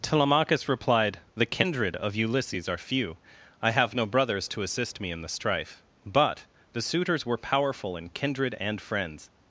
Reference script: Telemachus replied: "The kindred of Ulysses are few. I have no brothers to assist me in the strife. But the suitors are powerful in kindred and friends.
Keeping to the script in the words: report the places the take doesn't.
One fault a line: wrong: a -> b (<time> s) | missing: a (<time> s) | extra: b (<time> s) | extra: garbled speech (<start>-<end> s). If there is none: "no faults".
wrong: are -> were (7.2 s)